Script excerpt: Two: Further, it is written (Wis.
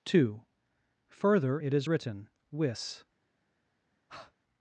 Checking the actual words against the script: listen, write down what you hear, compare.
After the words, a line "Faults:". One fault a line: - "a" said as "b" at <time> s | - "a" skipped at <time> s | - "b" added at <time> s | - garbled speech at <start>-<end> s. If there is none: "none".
Two: Further, it is written (Wis.
Faults:
none